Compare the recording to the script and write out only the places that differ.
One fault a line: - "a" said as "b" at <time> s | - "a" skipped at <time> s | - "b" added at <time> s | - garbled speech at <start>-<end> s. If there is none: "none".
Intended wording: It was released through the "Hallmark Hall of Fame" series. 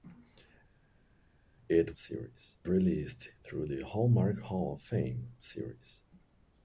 - "was" said as "series" at 1.9 s